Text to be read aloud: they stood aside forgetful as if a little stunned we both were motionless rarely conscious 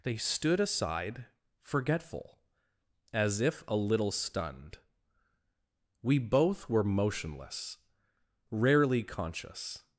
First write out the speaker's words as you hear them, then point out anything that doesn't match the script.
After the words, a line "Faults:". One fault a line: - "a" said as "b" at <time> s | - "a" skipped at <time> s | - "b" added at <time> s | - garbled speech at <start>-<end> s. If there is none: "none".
they stood aside forgetful as if a little stunned we both were motionless rarely conscious
Faults:
none